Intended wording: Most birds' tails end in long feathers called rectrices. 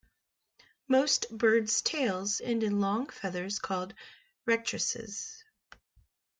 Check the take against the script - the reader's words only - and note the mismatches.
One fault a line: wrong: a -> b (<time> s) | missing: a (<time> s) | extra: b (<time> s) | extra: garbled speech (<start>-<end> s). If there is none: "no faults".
no faults